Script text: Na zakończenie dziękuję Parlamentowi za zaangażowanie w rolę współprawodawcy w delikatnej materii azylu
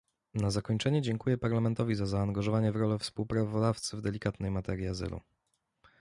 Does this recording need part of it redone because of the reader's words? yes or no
no